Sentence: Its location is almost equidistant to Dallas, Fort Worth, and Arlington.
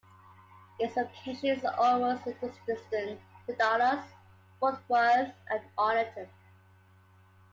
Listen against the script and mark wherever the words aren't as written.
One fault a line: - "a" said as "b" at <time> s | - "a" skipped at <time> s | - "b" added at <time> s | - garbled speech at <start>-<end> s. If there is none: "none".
none